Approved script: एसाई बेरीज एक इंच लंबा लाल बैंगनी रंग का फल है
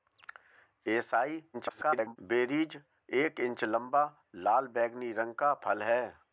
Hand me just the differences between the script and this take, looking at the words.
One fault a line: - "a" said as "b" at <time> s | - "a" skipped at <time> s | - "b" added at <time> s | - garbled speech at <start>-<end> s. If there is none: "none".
- garbled speech at 1.5-2.2 s